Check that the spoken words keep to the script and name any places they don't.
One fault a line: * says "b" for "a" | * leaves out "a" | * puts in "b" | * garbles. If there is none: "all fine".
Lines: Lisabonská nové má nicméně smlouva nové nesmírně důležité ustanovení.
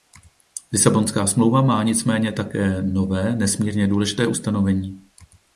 * says "smlouva" for "nové"
* says "také" for "smlouva"